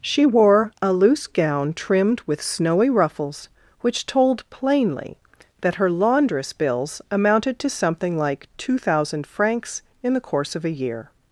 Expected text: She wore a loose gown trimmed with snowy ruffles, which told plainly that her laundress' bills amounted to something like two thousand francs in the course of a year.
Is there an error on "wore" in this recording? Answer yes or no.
no